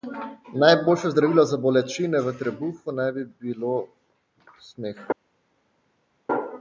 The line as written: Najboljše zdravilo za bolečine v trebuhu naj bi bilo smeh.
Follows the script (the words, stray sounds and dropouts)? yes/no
yes